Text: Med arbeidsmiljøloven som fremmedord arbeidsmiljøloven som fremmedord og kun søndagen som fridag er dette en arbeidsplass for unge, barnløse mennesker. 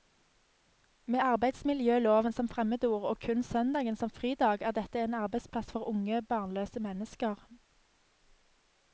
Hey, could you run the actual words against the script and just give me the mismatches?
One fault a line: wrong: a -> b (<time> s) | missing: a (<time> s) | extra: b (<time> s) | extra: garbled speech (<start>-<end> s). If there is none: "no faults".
missing: arbeidsmiljøloven som fremmedord (3.1 s)